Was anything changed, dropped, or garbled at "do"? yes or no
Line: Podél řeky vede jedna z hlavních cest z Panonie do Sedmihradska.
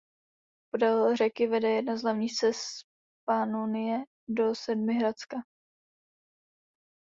no